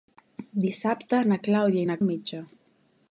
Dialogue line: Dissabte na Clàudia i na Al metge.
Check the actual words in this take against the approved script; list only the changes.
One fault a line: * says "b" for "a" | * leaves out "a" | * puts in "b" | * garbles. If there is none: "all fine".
all fine